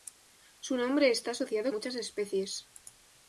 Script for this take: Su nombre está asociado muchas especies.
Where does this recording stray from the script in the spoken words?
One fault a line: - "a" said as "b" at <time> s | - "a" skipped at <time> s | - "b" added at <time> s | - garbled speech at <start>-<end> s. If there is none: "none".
none